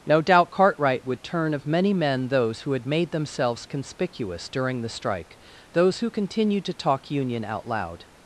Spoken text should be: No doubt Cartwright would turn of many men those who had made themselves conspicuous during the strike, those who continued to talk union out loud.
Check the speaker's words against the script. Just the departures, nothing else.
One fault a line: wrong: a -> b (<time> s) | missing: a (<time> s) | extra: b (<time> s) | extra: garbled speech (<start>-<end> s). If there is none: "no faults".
no faults